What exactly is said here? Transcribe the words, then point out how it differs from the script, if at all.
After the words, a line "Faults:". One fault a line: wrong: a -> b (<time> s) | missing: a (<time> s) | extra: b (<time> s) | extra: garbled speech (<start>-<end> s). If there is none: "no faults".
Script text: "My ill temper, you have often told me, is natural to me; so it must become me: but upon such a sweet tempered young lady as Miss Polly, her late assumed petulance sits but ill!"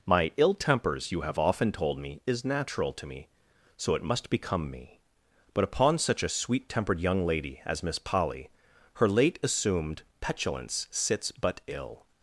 "My ill tempers, you have often told me, is natural to me; so it must become me: but upon such a sweet tempered young lady as Miss Polly, her late assumed petulance sits but ill!"
Faults:
wrong: temper -> tempers (0.6 s)